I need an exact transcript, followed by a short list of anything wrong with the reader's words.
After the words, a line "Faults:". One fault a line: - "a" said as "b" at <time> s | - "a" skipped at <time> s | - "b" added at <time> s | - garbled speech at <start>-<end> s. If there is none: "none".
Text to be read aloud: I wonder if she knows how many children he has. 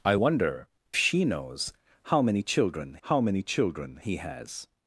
I wonder she knows how many children how many children he has.
Faults:
- "if" skipped at 0.7 s
- "how many children" added at 3.0 s